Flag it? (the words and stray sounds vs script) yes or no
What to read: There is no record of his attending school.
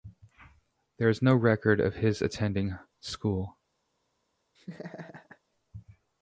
yes